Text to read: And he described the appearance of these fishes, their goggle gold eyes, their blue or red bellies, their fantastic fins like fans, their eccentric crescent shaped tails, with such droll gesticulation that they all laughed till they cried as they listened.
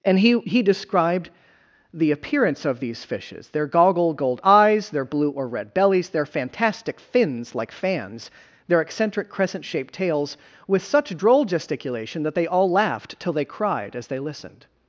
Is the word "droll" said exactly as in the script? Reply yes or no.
yes